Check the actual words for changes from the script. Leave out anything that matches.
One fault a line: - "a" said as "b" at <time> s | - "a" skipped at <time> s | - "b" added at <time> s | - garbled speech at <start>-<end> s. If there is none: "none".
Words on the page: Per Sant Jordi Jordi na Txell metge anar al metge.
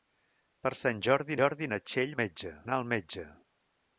none